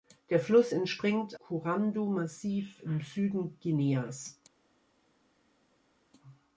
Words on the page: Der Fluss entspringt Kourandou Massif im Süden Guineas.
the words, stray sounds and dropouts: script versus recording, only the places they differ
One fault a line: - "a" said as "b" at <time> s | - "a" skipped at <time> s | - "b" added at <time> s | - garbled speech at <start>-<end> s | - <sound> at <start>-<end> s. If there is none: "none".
none